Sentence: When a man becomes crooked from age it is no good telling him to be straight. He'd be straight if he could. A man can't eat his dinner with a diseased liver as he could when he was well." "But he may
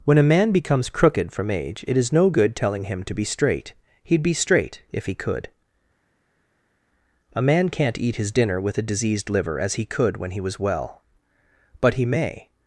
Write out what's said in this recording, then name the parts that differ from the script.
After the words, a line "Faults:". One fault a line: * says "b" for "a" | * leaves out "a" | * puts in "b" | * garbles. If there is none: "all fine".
When a man becomes crooked from age it is no good telling him to be straight. He'd be straight if he could. A man can't eat his dinner with a diseased liver as he could when he was well." "But he may
Faults:
all fine